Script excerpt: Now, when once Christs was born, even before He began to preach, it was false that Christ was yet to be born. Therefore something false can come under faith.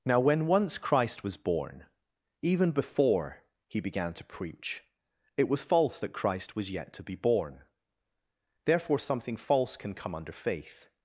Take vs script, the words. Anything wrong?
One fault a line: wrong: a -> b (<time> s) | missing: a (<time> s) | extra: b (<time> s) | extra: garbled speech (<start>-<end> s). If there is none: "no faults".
wrong: Christs -> Christ (0.8 s)